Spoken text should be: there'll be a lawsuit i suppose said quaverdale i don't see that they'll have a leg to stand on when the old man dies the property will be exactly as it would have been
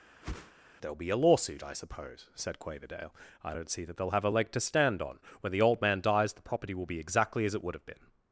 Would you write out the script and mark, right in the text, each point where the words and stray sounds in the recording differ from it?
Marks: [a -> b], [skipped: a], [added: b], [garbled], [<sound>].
[whoosh] there'll be a lawsuit i suppose said quaverdale i don't see that they'll have a leg to stand on when the old man dies the property will be exactly as it would have been